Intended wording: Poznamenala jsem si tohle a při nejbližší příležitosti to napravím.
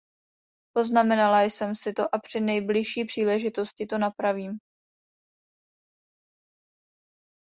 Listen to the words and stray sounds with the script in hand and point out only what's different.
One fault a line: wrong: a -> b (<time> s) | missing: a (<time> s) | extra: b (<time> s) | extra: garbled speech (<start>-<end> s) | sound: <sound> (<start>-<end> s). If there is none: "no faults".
wrong: tohle -> to (1.9 s)